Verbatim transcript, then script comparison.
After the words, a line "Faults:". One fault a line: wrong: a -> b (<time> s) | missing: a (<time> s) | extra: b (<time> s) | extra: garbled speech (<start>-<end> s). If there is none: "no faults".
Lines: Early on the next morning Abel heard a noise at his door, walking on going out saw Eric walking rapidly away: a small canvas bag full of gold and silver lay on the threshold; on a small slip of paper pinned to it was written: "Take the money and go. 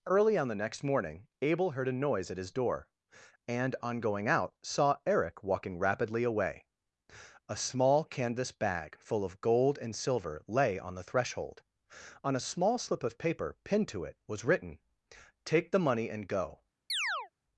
Early on the next morning Abel heard a noise at his door, and on going out saw Eric walking rapidly away: a small canvas bag full of gold and silver lay on the threshold; on a small slip of paper pinned to it was written: "Take the money and go.
Faults:
wrong: walking -> and (3.5 s)